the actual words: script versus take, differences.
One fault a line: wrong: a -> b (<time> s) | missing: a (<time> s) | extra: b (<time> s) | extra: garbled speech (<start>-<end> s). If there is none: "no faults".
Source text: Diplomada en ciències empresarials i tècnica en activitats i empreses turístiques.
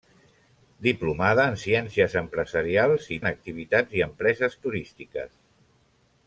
missing: tècnica (3.2 s)